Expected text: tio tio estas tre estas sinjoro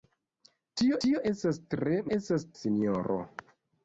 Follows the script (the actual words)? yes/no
yes